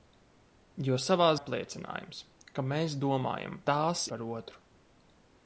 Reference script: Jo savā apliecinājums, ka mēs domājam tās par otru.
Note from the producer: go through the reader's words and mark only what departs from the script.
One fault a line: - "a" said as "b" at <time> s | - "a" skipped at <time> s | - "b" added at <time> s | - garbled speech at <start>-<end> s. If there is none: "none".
none